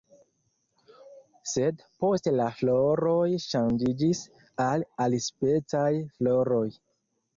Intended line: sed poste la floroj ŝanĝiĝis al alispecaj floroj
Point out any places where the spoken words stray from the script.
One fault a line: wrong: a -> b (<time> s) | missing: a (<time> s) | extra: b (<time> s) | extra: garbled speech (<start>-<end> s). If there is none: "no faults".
no faults